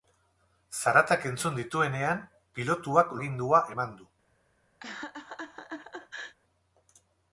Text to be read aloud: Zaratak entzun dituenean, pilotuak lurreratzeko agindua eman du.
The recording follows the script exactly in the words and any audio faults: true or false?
false